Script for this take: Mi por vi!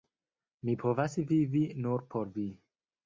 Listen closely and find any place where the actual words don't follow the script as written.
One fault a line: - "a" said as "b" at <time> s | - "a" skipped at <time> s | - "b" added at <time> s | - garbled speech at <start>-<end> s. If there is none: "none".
- "povas vivi nur" added at 0.8 s